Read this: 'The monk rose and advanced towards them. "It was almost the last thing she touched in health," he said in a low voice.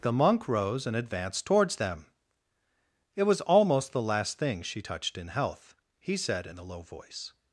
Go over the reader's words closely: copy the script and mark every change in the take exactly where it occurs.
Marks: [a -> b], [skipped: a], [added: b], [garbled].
'The monk rose and advanced towards them. "It was almost the last thing she touched in health," he said in a low voice.